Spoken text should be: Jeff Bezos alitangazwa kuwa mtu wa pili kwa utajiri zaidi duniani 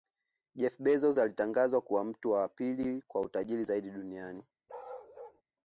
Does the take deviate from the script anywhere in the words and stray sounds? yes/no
yes